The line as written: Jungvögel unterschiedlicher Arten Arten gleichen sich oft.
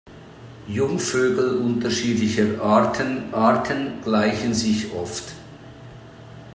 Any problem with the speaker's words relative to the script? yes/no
no